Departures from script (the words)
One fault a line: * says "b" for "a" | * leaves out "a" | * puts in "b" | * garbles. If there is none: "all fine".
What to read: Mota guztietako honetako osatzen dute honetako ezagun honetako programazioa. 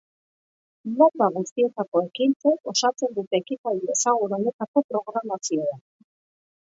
* says "ekintzek" for "honetako"
* says "ekitaldi" for "honetako"